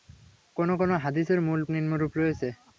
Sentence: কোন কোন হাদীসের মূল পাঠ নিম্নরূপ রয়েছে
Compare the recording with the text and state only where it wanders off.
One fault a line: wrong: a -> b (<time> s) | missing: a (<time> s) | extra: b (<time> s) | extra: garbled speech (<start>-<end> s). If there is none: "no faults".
missing: পাঠ (1.6 s)